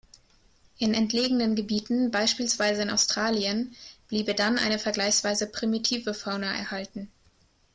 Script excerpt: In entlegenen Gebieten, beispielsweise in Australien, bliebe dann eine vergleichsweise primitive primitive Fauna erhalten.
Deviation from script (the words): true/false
true